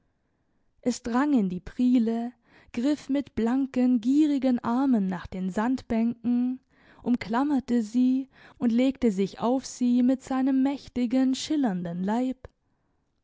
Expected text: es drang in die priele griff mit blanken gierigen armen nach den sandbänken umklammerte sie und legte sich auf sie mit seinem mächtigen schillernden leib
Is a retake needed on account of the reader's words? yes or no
no